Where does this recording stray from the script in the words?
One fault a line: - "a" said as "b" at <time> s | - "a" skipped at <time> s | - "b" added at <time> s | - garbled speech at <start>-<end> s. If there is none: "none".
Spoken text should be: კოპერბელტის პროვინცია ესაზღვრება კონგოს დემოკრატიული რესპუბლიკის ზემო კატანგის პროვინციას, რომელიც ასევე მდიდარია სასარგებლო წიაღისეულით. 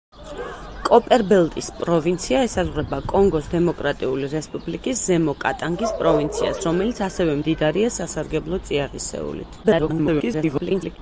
- garbled speech at 9.6-11.0 s